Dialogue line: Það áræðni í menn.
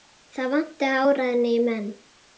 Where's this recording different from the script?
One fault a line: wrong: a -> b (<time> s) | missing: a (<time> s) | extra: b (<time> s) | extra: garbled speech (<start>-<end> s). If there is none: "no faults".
extra: vantaði (0.5 s)